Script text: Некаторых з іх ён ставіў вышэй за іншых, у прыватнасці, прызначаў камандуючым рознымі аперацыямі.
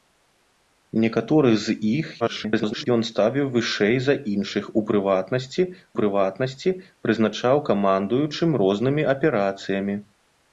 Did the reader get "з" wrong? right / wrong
right